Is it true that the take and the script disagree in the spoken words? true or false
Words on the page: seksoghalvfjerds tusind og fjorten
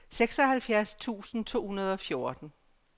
true